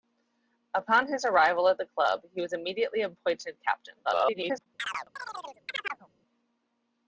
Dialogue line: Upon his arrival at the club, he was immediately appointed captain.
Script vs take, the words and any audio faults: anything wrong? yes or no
yes